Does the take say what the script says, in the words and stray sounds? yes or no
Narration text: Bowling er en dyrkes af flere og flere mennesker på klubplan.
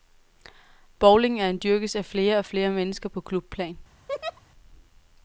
no